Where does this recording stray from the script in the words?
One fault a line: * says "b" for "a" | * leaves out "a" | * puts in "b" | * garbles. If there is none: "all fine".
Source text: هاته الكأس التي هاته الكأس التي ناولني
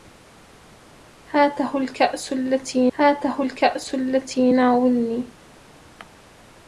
all fine